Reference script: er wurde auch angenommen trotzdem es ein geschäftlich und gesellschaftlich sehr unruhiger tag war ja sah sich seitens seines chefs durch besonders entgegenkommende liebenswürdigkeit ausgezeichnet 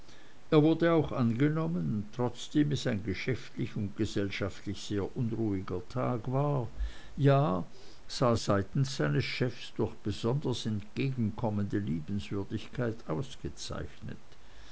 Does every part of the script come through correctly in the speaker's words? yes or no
no